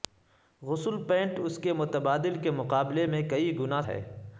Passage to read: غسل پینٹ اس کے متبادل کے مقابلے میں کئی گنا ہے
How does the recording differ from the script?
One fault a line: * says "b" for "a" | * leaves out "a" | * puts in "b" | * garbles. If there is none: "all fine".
all fine